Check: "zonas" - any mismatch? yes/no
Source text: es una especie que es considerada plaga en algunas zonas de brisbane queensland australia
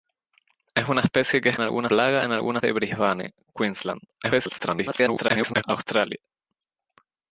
yes